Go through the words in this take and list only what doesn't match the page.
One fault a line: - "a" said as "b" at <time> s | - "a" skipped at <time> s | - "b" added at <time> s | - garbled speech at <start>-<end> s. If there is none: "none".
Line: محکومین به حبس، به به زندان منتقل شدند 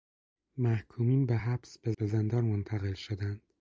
none